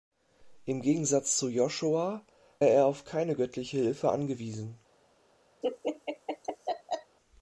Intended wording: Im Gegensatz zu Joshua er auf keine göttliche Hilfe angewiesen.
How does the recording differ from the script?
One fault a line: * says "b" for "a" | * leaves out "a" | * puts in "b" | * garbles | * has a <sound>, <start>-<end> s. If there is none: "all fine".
* has a laugh, 5.6-7.2 s